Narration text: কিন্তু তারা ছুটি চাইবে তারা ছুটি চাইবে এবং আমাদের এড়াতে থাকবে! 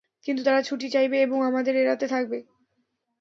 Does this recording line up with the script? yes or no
no